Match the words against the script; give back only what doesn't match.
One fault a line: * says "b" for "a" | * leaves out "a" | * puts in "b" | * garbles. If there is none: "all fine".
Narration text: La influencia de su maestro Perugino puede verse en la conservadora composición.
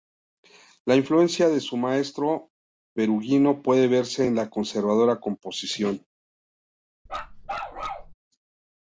all fine